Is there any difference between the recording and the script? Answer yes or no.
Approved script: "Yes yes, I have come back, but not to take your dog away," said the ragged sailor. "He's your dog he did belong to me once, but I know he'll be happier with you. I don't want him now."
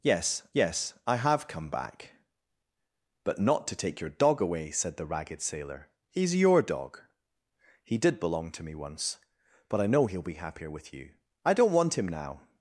no